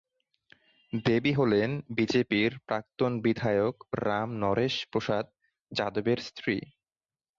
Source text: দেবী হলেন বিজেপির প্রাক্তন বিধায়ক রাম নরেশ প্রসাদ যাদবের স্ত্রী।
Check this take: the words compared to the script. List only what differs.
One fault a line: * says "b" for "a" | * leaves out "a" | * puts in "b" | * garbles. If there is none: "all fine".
all fine